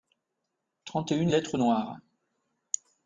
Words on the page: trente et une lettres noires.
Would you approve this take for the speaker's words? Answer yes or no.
yes